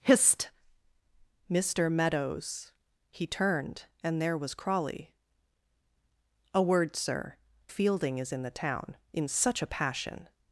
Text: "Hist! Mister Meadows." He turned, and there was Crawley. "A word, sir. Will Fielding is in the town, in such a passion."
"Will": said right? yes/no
no